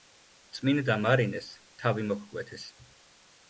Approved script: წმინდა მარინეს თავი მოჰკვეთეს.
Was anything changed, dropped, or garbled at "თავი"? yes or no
no